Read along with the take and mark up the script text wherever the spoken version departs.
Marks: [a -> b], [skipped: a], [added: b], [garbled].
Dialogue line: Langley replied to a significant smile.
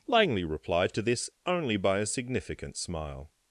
Langley replied to [added: this only by] a significant smile.